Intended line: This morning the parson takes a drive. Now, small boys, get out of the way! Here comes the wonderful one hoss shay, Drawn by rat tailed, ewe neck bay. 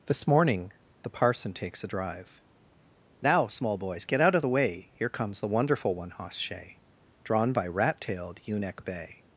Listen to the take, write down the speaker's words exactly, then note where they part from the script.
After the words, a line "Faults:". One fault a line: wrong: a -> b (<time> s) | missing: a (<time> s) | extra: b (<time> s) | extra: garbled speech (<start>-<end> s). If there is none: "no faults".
This morning the parson takes a drive. Now, small boys, get out of the way! Here comes the wonderful one hoss shay, Drawn by rat tailed, ewe neck bay.
Faults:
no faults